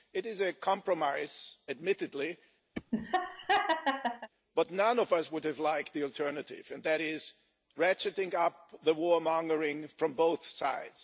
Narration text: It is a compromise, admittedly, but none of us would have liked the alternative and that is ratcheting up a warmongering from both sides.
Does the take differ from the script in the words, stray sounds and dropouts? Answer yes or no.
yes